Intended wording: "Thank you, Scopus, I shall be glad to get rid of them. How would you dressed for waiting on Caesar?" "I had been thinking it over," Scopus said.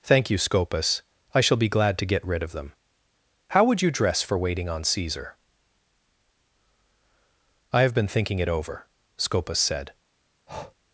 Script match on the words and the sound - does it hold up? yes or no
no